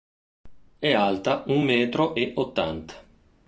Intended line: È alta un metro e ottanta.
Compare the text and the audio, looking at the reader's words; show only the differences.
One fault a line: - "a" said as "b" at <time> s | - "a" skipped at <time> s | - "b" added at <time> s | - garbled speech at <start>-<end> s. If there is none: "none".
none